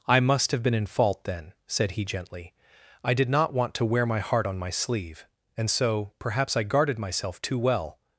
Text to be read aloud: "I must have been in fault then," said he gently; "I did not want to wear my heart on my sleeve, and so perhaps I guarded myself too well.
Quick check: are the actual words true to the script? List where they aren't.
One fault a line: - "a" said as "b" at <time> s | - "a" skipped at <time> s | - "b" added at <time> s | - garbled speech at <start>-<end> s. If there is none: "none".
none